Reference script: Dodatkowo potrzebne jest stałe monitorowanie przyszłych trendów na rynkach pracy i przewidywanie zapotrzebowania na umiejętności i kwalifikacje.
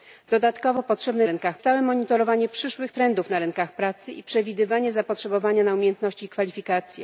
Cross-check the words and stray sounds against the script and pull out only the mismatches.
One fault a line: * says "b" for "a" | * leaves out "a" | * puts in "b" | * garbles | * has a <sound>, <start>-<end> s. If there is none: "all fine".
* says "rynkach" for "jest"